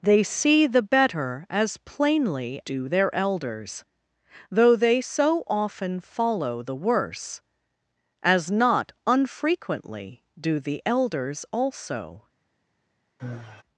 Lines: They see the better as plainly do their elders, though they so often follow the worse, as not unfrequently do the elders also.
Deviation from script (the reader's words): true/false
false